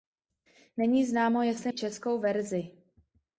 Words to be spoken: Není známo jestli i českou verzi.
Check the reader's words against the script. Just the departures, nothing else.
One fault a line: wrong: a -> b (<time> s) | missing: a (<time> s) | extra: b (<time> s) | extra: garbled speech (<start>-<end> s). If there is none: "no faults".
no faults